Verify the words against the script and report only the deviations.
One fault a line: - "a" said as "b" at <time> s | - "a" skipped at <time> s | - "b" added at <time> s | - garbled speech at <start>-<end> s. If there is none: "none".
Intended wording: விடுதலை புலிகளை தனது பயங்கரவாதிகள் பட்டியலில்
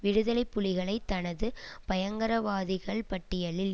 none